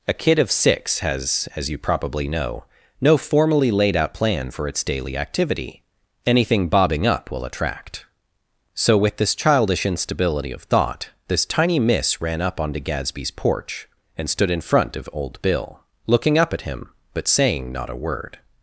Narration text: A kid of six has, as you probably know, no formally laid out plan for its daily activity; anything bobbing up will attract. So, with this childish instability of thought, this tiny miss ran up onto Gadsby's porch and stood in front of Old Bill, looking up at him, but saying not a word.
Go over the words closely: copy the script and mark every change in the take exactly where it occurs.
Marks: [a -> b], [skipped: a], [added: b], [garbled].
A kid of six has, as you probably know, no formally laid out plan for its daily activity; anything bobbing up will attract. So, with this childish instability of thought, this tiny miss ran up onto Gadsby's porch and stood in front of Old Bill, looking up at him, but saying not a word.